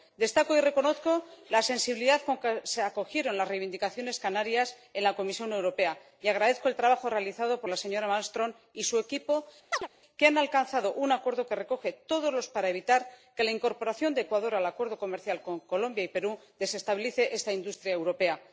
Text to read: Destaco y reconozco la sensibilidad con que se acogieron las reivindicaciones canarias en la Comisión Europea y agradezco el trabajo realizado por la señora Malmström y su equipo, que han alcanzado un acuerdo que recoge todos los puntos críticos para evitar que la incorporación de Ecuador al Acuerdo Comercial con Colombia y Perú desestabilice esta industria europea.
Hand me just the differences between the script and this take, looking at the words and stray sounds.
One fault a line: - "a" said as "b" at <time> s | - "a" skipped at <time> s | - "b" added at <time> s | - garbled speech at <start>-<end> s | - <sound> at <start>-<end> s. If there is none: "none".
- chirp at 9.7-9.9 s
- "puntos críticos" skipped at 12.5 s